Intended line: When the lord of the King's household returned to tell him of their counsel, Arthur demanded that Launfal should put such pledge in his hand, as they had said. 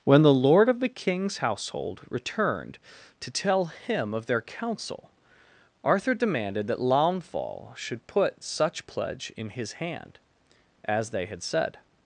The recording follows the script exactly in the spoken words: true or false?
true